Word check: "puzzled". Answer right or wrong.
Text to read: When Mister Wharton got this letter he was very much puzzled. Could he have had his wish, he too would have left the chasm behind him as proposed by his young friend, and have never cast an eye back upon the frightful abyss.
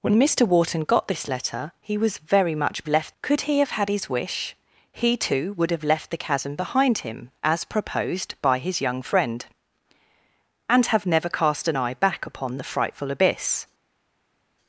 wrong